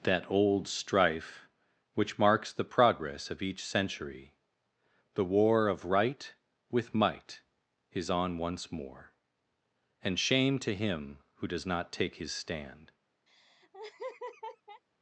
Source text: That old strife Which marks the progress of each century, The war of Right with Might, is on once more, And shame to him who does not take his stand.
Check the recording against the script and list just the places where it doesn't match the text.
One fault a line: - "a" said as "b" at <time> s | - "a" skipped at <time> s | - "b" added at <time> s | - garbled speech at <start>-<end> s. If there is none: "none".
none